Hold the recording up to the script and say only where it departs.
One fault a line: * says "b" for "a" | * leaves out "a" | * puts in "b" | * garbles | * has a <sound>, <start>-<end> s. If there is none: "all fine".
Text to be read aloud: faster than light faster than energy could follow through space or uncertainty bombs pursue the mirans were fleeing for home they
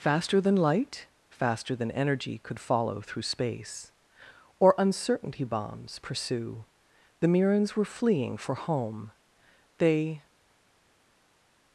all fine